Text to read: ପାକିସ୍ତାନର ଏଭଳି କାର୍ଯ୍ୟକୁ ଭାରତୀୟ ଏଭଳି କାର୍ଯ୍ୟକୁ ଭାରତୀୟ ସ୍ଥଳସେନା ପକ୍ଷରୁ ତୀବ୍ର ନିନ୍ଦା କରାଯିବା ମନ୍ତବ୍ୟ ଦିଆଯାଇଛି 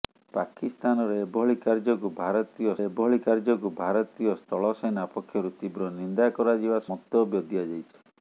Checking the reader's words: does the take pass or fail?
pass